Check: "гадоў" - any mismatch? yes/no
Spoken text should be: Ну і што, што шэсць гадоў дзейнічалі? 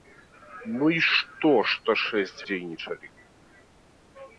yes